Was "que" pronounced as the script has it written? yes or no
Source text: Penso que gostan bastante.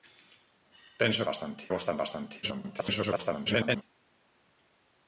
no